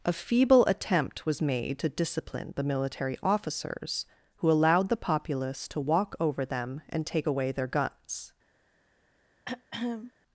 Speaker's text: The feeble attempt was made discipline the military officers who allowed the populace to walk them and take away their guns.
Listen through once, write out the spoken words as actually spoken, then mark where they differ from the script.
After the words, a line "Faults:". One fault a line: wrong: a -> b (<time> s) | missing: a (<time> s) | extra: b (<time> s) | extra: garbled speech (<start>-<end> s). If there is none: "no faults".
A feeble attempt was made to discipline the military officers who allowed the populace to walk over them and take away their guns.
Faults:
wrong: The -> A (0.0 s)
extra: to (1.8 s)
extra: over (6.2 s)